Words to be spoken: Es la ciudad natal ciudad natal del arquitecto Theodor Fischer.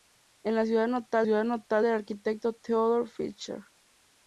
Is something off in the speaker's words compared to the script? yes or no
no